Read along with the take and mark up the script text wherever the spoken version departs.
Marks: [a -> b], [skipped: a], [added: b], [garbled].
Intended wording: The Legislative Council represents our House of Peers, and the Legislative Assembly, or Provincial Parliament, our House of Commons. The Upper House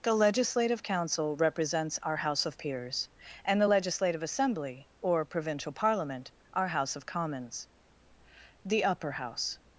The Legislative Council represents our House of Peers, and the Legislative Assembly, or Provincial Parliament, our House of Commons. The Upper House